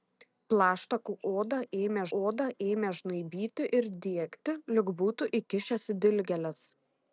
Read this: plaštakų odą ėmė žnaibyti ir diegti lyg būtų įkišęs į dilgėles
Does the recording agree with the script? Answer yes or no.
no